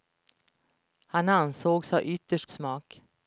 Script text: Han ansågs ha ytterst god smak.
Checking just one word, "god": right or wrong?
wrong